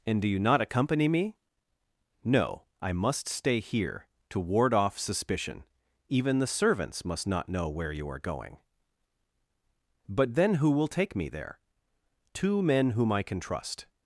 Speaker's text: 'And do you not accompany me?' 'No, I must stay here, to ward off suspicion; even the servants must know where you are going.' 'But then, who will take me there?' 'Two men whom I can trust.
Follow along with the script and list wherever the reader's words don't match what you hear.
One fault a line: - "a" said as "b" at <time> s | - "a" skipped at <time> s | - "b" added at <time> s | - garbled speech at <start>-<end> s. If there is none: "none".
- "not" added at 7.3 s